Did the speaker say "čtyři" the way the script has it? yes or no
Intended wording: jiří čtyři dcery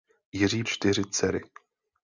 yes